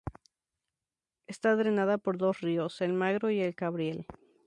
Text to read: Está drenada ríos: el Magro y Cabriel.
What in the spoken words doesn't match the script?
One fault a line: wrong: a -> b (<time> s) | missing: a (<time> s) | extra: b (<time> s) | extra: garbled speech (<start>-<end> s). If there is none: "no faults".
extra: por dos (2.0 s)
extra: el (3.4 s)